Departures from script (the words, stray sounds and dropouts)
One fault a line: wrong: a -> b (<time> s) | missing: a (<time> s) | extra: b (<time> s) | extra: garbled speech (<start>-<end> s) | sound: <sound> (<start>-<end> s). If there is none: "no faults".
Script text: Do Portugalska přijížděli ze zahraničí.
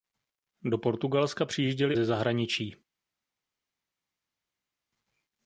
no faults